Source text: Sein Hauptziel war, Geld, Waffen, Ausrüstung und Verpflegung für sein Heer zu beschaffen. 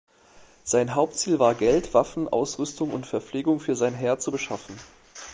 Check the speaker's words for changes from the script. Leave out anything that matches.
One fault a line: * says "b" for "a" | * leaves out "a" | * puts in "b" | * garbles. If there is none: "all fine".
all fine